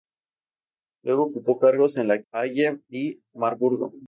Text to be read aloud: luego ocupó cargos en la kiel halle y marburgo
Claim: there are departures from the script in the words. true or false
true